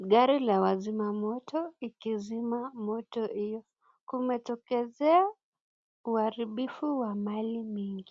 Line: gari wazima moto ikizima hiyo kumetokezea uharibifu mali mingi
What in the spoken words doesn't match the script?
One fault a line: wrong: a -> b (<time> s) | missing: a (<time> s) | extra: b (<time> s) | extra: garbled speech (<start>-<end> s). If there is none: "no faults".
extra: la (0.4 s)
extra: moto (2.7 s)
extra: wa (7.0 s)